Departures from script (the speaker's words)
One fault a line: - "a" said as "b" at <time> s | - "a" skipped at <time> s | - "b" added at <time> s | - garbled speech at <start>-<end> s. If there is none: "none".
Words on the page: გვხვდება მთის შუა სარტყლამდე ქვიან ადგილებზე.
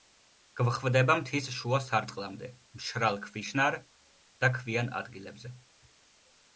- "მშრალ ქვიშნარ და" added at 2.8 s